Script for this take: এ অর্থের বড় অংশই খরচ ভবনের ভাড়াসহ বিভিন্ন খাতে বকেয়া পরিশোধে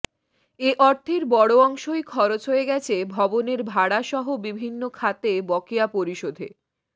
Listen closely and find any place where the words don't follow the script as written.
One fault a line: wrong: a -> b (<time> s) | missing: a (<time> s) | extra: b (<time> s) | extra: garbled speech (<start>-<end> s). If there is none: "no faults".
extra: হয়ে গেছে (2.5 s)